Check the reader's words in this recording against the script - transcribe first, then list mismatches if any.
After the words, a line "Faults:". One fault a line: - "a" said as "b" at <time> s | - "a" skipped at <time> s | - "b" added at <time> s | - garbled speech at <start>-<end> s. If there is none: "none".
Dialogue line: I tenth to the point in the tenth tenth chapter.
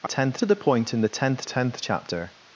I tenth to the point in the tenth tenth chapter.
Faults:
none